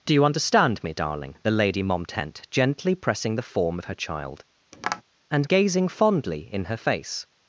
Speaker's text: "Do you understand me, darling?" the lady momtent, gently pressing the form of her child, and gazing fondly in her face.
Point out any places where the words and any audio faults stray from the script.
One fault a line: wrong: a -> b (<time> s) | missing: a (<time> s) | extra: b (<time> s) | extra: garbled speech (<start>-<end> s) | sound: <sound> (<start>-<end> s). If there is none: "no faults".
sound: tap (4.7-5.0 s)